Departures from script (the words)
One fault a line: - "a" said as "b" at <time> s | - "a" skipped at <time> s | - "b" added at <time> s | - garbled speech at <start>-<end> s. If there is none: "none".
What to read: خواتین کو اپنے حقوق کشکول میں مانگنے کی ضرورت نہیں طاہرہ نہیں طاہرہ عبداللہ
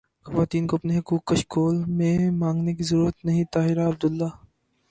- "نہیں طاہرہ" skipped at 3.9 s